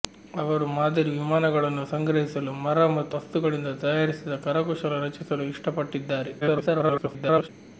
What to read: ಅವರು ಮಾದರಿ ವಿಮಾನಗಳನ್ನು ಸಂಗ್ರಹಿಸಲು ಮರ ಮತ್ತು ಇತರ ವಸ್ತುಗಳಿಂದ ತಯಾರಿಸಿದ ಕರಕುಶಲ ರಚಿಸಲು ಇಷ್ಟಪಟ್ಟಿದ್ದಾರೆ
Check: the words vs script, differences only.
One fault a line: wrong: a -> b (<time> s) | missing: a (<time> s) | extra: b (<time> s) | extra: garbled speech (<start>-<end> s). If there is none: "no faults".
missing: ಇತರ (3.1 s)
extra: garbled speech (6.4-7.5 s)